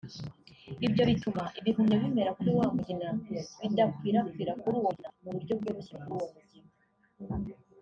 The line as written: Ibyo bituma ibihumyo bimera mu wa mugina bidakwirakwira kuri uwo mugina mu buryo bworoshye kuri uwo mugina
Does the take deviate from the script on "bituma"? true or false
false